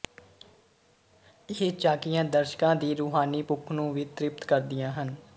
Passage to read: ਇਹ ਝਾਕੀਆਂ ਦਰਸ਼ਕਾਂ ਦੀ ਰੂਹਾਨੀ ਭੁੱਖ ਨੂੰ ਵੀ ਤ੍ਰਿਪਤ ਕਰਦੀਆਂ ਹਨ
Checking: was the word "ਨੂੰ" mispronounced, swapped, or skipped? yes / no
no